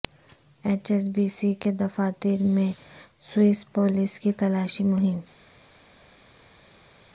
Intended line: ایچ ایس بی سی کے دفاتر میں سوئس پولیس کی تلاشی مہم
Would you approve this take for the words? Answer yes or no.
yes